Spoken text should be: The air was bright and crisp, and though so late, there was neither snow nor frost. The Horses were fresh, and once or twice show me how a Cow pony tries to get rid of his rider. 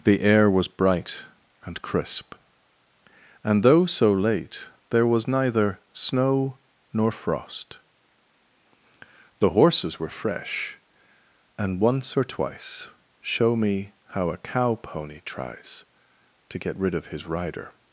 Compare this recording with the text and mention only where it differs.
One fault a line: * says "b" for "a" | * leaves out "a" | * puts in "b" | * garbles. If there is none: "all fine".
all fine